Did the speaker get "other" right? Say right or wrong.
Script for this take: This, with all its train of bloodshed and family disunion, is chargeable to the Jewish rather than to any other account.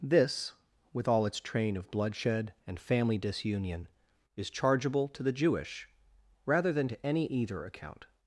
wrong